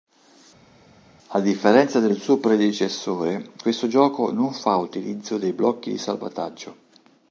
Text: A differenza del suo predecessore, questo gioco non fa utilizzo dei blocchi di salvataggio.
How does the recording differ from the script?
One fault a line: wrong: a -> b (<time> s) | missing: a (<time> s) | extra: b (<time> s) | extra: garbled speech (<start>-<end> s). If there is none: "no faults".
no faults